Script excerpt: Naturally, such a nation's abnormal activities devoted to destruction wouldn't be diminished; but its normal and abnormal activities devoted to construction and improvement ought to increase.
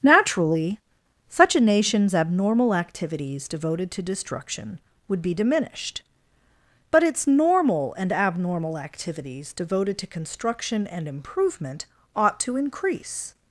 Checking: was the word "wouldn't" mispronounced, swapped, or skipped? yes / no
yes